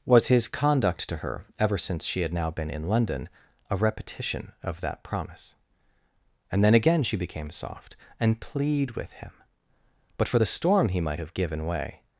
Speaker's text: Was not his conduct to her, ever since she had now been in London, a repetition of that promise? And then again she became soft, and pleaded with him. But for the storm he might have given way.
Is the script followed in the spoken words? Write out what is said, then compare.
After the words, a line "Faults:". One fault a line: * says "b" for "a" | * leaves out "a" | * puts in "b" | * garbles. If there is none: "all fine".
Was his conduct to her, ever since she had now been in London, a repetition of that promise? And then again she became soft, and plead with him. But for the storm he might have given way.
Faults:
* leaves out "not"
* says "plead" for "pleaded"